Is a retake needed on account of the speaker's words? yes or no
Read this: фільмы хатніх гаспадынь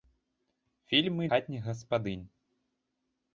no